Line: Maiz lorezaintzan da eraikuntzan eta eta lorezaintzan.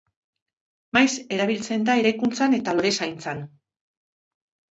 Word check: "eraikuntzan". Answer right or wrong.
right